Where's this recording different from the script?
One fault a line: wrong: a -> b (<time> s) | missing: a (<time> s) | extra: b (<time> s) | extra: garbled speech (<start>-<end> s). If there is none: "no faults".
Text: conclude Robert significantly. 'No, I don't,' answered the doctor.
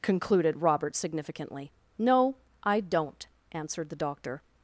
wrong: conclude -> concluded (0.0 s)